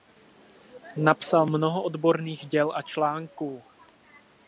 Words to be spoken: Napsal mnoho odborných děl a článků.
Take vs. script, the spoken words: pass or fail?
pass